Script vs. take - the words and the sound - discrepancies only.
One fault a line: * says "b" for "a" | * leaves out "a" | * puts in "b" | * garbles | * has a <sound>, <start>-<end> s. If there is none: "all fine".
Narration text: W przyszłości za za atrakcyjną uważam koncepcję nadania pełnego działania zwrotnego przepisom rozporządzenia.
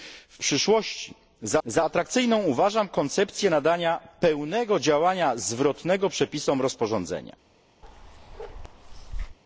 * has a bark, 7.8-9.4 s